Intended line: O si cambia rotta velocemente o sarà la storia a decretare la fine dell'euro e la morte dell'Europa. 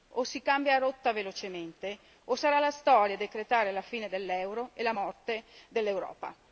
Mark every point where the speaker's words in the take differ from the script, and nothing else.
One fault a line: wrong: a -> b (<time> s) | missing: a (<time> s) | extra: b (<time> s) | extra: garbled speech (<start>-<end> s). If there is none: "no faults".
no faults